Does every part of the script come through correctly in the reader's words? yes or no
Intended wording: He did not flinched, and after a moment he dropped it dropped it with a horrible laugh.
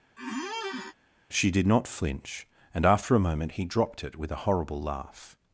no